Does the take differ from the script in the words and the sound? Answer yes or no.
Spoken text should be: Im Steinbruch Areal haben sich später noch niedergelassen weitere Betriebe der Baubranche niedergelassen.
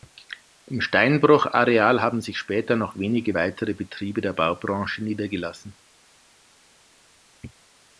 yes